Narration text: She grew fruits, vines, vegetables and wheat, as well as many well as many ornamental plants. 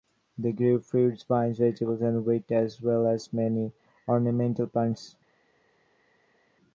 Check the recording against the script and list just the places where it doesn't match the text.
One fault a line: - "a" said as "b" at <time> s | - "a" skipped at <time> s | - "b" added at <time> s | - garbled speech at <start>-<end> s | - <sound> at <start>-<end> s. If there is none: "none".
- "She" said as "They" at 0.4 s
- "well as many" skipped at 3.7 s